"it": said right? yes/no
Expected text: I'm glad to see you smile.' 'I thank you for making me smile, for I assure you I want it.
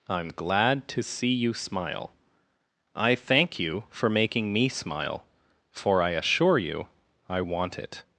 yes